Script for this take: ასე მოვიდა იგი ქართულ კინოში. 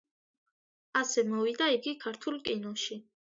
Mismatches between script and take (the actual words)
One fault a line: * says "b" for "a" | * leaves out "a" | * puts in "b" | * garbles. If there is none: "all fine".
all fine